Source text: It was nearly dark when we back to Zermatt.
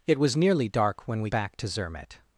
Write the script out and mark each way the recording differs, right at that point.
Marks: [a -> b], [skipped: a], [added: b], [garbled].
It was nearly dark when we back to Zermatt.